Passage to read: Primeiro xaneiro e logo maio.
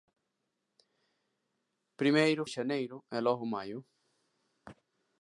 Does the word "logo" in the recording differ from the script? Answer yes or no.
no